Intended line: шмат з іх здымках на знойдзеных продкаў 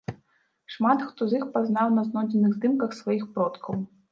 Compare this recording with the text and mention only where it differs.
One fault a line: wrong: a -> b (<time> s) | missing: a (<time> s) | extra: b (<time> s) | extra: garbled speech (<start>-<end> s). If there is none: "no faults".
extra: хто (1.1 s)
wrong: здымках -> пазнаў (1.6 s)
extra: здымках сваіх (2.6 s)